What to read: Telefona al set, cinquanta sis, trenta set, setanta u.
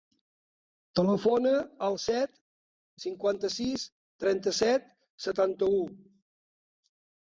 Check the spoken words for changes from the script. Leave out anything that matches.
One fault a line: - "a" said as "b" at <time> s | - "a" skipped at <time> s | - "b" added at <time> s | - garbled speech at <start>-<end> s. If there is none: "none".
none